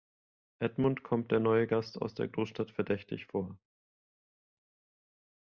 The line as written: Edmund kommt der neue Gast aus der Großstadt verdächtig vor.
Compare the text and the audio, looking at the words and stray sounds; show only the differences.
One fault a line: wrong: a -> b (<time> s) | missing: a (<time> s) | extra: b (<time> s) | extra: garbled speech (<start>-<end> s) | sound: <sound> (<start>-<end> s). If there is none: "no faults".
no faults